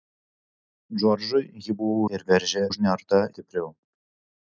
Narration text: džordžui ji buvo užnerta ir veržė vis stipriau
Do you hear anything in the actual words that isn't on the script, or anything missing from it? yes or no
yes